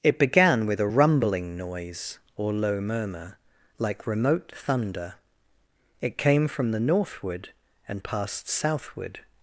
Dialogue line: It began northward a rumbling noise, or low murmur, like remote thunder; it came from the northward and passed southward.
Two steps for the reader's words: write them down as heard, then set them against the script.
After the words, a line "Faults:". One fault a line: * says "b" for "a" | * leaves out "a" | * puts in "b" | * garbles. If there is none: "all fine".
It began with a rumbling noise, or low murmur, like remote thunder; it came from the northward and passed southward.
Faults:
* says "with" for "northward"